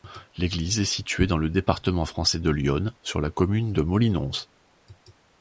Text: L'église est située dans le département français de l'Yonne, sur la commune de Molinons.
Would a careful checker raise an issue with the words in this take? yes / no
no